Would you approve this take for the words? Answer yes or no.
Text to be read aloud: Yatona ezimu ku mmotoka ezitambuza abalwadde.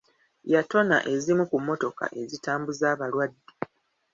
yes